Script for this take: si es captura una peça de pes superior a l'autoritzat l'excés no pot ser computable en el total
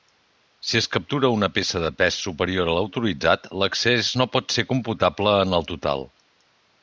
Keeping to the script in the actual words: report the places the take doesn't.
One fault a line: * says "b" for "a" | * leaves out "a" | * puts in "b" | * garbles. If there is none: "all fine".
all fine